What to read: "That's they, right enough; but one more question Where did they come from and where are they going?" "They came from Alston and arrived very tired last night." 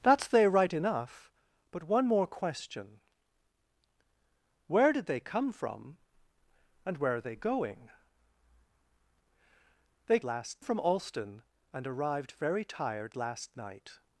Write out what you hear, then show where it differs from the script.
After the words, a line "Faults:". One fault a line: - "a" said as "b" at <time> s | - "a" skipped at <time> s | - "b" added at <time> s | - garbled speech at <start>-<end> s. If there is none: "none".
"That's they, right enough; but one more question Where did they come from and where are they going?" "They last from Alston and arrived very tired last night."
Faults:
- "came" said as "last" at 10.2 s